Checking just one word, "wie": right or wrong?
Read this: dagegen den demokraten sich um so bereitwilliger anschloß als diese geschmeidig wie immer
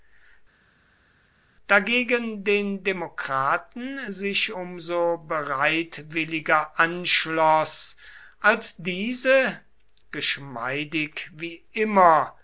right